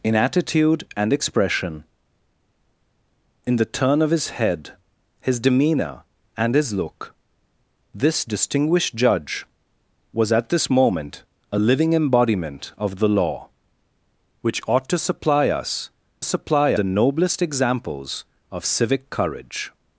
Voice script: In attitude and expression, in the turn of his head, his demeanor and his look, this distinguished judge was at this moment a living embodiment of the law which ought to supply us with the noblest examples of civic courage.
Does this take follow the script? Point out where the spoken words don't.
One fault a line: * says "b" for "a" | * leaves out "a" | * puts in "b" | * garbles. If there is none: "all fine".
* says "supply" for "with"